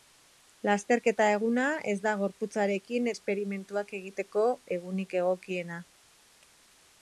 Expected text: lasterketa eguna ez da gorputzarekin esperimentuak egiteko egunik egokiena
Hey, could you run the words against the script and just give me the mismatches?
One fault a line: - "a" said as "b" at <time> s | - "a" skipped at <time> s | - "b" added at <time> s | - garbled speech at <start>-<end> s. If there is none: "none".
none